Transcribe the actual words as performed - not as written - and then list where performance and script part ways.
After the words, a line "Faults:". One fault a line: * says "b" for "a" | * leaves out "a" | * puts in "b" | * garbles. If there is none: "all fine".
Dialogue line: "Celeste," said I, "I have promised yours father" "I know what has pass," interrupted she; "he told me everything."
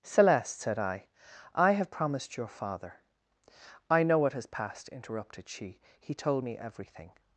"Celeste," said I, "I have promised your father" "I know what has passed," interrupted she; "he told me everything."
Faults:
* says "your" for "yours"
* says "passed" for "pass"